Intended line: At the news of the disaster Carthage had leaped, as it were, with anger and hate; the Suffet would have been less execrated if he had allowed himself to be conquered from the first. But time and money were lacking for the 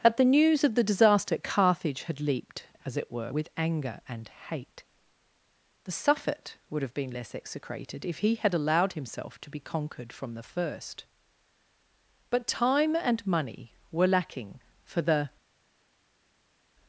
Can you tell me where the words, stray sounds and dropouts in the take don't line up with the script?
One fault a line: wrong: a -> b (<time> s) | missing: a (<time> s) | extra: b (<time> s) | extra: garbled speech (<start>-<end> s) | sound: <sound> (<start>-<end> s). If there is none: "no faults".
no faults